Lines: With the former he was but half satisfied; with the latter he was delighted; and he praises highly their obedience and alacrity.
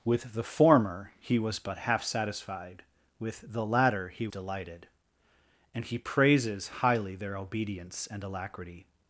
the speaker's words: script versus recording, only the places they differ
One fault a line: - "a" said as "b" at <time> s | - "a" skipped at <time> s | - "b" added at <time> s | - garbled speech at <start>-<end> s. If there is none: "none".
- "was" skipped at 4.3 s